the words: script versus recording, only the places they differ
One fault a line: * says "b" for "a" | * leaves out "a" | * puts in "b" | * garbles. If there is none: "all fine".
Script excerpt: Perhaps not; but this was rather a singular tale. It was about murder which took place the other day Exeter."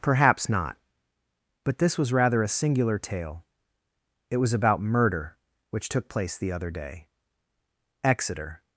all fine